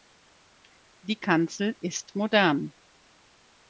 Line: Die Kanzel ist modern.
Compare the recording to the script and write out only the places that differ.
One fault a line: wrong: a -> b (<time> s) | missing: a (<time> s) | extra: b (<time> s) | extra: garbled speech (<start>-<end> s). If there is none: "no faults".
no faults